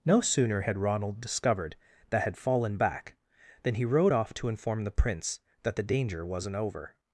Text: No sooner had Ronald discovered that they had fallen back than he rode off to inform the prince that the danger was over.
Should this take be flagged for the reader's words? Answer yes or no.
yes